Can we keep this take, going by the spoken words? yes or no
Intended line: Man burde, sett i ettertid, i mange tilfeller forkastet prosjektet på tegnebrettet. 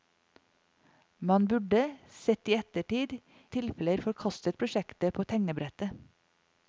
no